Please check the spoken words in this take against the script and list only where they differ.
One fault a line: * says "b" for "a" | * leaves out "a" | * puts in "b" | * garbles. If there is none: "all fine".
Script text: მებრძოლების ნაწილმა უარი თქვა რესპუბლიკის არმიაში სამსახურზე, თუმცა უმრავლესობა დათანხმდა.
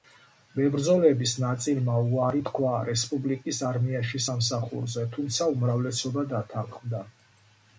all fine